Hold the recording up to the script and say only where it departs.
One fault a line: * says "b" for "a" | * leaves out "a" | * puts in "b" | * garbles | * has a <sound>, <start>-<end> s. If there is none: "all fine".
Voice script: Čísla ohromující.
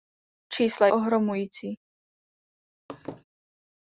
* has a laugh, 2.9-3.2 s